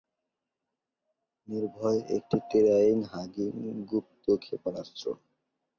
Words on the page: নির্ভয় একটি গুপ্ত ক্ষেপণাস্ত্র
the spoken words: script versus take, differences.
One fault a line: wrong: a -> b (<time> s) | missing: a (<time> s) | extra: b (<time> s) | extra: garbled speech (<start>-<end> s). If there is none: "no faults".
extra: টেরাইন হাগিং (2.5 s)